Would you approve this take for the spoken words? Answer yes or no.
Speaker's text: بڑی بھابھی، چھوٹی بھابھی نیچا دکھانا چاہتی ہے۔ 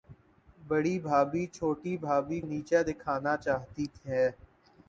yes